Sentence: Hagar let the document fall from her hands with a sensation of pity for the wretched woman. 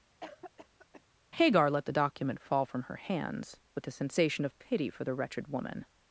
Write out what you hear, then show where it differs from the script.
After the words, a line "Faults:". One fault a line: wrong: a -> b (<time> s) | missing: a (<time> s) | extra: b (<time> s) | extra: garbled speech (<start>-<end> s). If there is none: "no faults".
Hagar let the document fall from her hands with a sensation of pity for the wretched woman.
Faults:
no faults